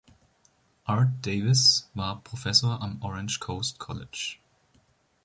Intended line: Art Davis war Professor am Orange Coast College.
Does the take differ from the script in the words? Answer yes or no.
no